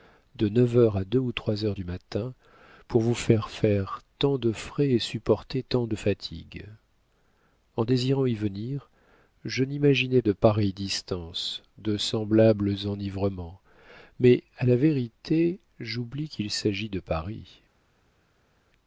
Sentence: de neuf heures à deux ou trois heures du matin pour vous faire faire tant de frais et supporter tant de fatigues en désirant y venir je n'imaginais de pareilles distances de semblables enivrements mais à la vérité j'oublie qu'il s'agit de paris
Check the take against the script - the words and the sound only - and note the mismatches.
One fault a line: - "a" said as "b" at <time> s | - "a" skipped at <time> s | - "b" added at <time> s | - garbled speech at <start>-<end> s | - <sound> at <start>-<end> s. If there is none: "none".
none